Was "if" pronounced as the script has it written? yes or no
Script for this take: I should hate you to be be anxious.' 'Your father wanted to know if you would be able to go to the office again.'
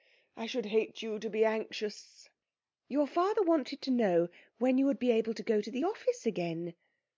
no